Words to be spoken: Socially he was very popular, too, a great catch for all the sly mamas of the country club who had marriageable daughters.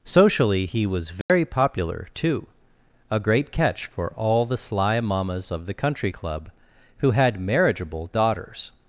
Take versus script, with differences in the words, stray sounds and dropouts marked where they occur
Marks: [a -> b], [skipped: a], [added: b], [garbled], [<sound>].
Socially he was very [dropout] popular, too, a great catch for all the sly mamas of the country club who had marriageable daughters.